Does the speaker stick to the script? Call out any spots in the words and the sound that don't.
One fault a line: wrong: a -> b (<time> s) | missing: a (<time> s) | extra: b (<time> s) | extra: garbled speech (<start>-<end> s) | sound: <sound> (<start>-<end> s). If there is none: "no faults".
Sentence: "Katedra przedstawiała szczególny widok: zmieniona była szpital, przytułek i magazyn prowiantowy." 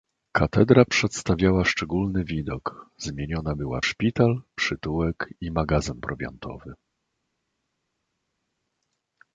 no faults